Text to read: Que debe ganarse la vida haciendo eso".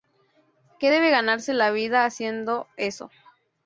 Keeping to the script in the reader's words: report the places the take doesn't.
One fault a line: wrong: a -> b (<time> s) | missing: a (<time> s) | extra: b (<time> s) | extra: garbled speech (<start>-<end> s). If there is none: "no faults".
no faults